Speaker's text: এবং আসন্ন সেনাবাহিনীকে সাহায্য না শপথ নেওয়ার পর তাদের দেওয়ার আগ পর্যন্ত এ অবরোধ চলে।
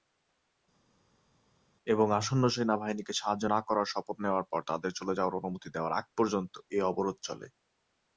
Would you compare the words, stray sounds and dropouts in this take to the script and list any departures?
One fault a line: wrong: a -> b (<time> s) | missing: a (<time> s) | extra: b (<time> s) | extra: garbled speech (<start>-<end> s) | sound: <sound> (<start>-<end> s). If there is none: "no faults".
extra: করার (3.7 s)
extra: চলে যাওয়ার অনুমতি (5.0 s)